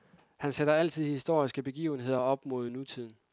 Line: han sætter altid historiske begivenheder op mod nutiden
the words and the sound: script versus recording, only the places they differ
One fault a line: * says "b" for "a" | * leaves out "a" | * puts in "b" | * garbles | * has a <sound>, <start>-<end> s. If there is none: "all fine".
all fine